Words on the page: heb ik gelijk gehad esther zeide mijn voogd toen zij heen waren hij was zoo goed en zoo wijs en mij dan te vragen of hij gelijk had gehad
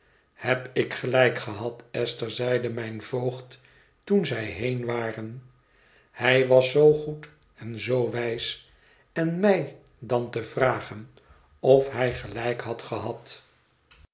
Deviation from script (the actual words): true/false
false